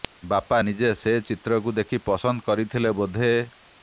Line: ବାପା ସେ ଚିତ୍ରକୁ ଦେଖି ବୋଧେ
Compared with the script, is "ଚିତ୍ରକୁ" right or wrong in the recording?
right